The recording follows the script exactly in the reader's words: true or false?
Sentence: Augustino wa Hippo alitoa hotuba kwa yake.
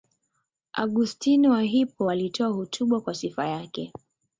false